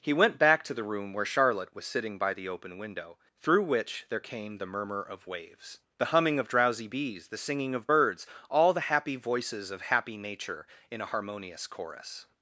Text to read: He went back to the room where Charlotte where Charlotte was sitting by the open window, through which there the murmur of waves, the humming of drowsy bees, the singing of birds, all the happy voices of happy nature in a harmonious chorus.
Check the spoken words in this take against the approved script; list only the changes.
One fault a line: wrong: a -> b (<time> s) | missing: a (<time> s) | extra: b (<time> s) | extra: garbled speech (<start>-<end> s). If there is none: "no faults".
missing: where Charlotte (1.8 s)
extra: came (4.2 s)